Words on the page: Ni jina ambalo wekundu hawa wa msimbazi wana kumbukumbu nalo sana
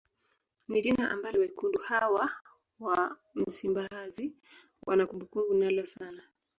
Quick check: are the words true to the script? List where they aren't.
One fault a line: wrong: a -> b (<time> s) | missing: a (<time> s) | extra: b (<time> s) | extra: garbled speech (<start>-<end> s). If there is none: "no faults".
no faults